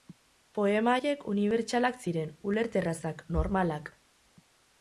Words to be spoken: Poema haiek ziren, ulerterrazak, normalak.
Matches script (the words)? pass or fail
fail